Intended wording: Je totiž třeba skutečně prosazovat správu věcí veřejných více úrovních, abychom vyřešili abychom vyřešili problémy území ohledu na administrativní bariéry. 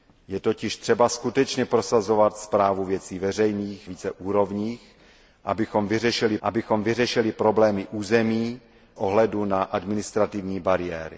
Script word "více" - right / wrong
right